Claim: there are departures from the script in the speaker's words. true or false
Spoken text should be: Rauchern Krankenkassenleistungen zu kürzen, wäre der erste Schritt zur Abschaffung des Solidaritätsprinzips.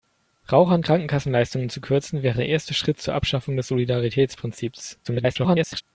true